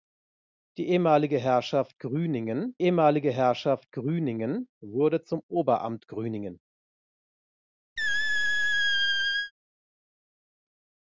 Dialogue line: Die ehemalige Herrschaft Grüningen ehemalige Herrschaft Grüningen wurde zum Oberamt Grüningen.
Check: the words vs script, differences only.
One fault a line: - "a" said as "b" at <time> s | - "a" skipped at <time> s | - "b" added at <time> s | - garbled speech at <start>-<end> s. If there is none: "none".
none